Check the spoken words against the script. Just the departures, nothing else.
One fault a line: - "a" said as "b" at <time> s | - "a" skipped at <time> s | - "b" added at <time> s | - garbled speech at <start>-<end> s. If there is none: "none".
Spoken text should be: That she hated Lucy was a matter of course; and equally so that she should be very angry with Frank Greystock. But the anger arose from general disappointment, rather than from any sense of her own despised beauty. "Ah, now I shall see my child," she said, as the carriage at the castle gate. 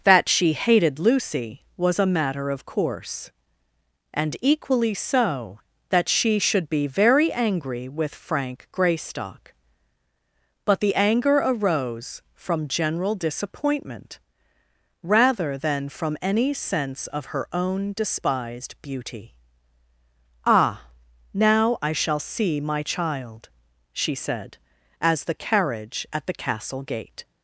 none